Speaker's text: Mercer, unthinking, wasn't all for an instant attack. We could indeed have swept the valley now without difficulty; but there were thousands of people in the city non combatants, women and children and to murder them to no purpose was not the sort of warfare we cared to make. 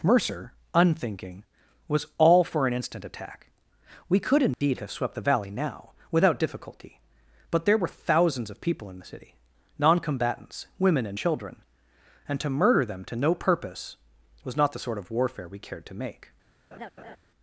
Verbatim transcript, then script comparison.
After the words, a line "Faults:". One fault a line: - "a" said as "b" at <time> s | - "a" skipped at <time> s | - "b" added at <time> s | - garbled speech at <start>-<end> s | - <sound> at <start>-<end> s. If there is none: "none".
Mercer, unthinking, was all for an instant attack. We could indeed have swept the valley now without difficulty; but there were thousands of people in the city non combatants, women and children and to murder them to no purpose was not the sort of warfare we cared to make.
Faults:
- "wasn't" said as "was" at 1.9 s
- dropout at 4.5-4.6 s
- laugh at 16.7-17.2 s